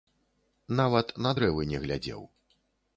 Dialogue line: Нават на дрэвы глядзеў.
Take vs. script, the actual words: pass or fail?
fail